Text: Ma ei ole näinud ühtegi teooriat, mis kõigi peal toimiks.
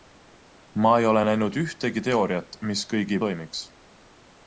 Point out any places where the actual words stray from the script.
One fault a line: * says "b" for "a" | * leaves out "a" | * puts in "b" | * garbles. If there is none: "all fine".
* leaves out "peal"